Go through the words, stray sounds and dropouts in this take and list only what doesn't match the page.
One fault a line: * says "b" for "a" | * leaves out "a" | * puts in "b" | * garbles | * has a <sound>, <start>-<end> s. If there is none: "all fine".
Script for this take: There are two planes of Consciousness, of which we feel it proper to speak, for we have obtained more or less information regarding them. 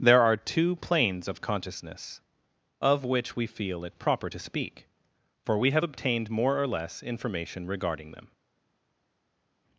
all fine